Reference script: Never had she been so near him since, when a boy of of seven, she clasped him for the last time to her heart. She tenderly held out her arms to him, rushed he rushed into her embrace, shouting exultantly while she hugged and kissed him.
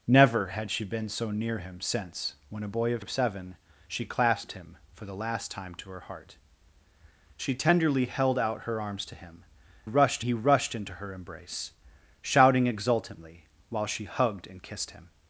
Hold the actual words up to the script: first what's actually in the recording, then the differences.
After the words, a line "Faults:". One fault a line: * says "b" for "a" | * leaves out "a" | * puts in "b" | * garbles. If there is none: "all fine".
Never had she been so near him since, when a boy of of seven, she clasped him for the last time to her heart. She tenderly held out her arms to him, rushed he rushed into her embrace, shouting exultantly while she hugged and kissed him.
Faults:
all fine